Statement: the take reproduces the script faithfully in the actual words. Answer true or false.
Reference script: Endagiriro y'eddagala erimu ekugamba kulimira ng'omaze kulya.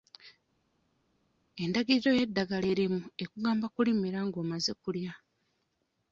true